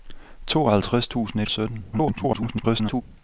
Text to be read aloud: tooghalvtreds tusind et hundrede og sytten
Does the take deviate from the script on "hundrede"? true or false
true